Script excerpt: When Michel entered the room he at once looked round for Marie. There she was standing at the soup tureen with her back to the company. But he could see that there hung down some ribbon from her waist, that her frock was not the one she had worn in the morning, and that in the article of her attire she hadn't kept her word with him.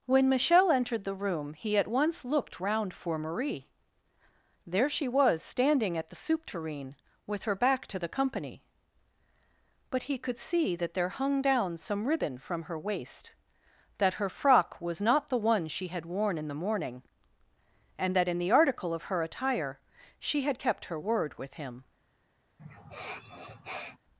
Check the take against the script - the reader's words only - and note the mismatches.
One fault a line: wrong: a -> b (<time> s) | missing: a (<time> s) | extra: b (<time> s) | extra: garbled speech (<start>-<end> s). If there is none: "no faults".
wrong: hadn't -> had (20.4 s)